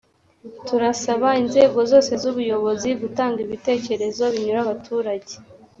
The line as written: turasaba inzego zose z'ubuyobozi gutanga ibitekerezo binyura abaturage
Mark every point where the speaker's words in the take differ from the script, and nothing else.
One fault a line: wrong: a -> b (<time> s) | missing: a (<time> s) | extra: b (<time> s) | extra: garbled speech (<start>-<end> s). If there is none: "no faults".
no faults